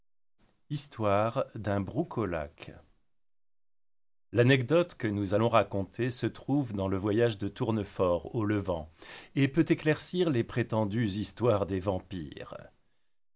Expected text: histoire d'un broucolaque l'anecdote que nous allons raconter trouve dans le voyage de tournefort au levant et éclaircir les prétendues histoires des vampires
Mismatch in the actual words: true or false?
true